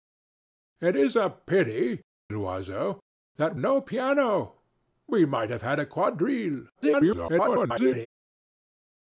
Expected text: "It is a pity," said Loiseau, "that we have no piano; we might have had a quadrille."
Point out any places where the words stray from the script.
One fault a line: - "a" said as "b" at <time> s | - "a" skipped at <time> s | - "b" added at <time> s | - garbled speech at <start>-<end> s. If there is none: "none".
- "said" skipped at 2.0 s
- "we have" skipped at 3.6 s
- garbled speech at 6.7-8.1 s